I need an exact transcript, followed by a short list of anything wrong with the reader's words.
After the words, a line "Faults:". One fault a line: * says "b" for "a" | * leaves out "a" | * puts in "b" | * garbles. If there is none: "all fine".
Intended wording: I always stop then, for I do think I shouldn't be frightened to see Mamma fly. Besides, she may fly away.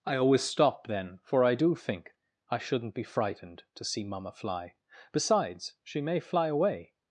I always stop then, for I do think I shouldn't be frightened to see Mamma fly. Besides, she may fly away.
Faults:
all fine